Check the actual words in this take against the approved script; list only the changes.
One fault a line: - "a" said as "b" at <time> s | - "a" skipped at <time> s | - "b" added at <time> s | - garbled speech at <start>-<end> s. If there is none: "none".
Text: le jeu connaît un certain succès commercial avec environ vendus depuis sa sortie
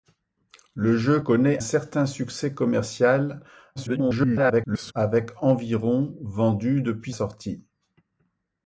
- "un" skipped at 1.6 s
- garbled speech at 3.8-4.9 s
- "sa" skipped at 7.1 s